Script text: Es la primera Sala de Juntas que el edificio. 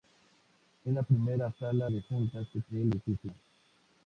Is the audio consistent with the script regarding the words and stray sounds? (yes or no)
yes